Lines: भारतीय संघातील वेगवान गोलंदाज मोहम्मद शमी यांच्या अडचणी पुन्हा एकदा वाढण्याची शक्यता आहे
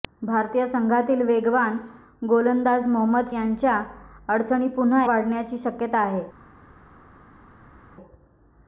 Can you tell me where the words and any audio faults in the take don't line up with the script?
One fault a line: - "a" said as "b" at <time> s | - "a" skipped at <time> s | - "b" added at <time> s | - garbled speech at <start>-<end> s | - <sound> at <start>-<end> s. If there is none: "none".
- "शमी" skipped at 3.3 s
- "एकदा" skipped at 5.0 s